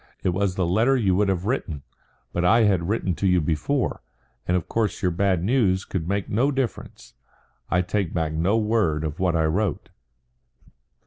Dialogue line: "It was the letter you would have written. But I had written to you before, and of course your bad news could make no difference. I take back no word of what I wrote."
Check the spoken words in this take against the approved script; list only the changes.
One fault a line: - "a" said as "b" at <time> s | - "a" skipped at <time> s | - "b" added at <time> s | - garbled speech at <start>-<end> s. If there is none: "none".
none